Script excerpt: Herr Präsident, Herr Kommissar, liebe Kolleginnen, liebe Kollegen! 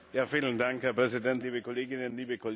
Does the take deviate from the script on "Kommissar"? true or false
true